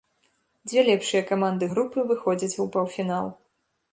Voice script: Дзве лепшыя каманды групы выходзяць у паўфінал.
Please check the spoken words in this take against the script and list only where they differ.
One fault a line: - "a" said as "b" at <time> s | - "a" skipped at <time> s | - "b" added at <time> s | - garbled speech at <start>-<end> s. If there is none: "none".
none